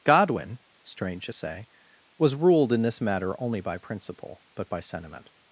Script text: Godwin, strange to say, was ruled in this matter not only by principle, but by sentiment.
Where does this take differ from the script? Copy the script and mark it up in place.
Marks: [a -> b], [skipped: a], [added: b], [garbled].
Godwin, strange to say, was ruled in this matter [skipped: not] only by principle, but by sentiment.